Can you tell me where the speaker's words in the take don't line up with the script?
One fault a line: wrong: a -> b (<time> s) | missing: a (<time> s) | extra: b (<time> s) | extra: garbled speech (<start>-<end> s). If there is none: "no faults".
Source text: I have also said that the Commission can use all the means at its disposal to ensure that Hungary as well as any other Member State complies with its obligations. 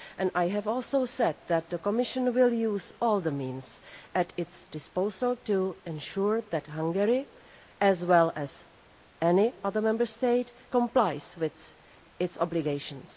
wrong: can -> will (2.3 s)